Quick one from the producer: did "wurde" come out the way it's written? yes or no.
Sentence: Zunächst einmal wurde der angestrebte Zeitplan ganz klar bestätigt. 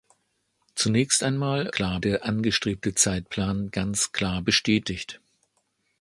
no